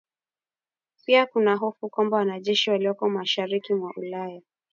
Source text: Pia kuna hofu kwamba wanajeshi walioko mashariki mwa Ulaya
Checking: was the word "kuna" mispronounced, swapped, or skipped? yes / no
no